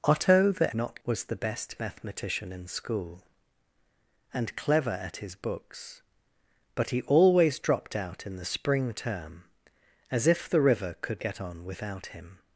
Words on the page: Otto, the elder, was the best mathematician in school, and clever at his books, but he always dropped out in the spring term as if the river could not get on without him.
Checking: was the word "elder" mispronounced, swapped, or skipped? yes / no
yes